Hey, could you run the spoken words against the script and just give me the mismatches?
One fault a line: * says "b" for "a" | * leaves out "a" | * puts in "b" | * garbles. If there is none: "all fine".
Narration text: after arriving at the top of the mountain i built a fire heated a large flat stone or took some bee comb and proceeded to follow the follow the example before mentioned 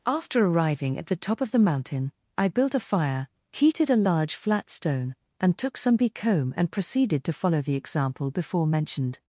* says "and" for "or"
* leaves out "follow the"